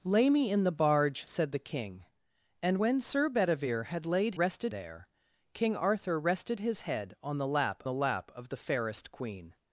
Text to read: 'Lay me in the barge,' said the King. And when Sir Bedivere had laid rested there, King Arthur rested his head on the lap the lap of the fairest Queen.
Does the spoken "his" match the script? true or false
true